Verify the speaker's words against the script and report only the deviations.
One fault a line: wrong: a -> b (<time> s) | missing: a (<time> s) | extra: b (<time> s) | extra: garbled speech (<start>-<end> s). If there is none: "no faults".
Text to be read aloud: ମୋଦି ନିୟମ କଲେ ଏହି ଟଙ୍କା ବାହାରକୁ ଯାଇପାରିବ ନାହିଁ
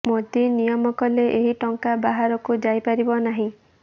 no faults